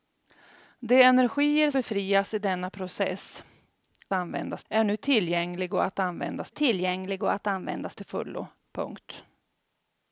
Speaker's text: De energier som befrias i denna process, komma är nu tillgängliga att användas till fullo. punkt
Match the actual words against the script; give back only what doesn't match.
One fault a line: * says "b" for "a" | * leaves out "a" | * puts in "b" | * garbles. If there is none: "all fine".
* leaves out "som"
* says "användas" for "komma"
* puts in "tillgängliga att användas"